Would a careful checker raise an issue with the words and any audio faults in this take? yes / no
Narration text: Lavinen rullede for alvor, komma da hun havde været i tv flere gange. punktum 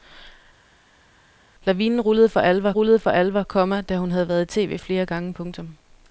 yes